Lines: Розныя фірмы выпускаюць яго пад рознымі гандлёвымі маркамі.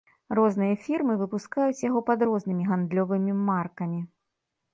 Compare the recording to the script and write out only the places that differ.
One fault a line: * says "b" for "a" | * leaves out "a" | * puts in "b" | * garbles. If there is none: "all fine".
all fine